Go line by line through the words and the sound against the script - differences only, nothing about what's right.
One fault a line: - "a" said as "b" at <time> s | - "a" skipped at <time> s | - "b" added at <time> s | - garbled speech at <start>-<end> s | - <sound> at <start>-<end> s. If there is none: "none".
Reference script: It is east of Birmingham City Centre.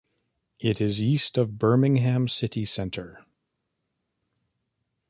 none